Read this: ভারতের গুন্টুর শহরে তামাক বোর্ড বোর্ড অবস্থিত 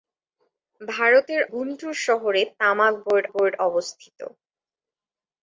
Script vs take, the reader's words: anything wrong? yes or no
no